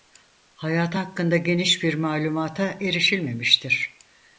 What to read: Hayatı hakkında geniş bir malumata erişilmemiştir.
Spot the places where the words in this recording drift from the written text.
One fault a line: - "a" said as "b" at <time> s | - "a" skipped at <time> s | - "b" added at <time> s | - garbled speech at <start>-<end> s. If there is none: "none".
none